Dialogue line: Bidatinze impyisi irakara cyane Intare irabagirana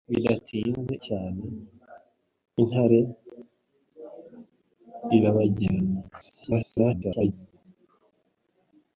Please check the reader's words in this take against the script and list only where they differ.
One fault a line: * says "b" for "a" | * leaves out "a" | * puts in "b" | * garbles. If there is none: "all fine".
* leaves out "impyisi irakara"
* garbles